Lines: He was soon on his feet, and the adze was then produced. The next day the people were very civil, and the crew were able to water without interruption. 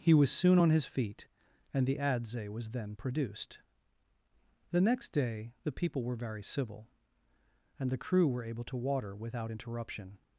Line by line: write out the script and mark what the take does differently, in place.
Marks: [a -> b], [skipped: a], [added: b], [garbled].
He was soon on his feet, and the adze was then produced. The next day the people were very civil, and the crew were able to water without interruption.